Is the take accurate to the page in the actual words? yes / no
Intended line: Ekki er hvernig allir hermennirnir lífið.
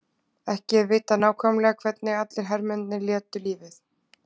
no